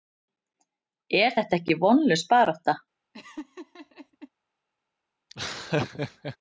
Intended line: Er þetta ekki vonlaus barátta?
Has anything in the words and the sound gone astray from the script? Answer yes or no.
yes